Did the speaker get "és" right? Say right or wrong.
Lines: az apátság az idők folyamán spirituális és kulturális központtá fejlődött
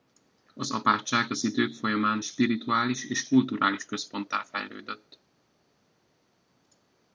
right